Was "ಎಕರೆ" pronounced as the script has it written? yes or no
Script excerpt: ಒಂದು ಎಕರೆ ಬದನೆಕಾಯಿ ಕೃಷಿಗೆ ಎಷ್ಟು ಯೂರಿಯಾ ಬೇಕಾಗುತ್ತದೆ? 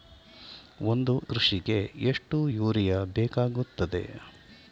no